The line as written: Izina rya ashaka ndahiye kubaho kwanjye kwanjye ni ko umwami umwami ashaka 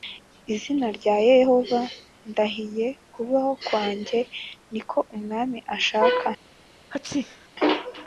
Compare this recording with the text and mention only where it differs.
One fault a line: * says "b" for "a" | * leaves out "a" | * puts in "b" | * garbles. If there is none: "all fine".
* says "yehova" for "ashaka"
* leaves out "kwanjye"
* leaves out "umwami"